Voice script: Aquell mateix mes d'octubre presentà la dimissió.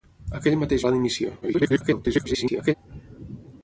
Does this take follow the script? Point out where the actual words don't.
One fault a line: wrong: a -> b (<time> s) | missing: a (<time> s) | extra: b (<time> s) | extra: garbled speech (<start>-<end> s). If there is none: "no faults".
missing: mes d'octubre presentà (0.8 s)
extra: garbled speech (1.4-2.7 s)